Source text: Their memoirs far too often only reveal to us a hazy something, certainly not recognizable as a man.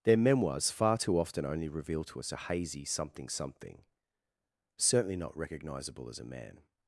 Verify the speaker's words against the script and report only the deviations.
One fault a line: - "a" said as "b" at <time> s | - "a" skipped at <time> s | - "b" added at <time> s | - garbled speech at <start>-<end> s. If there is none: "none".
- "something" added at 3.3 s